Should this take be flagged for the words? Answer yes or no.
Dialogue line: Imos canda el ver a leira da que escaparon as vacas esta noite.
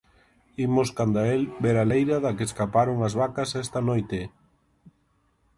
no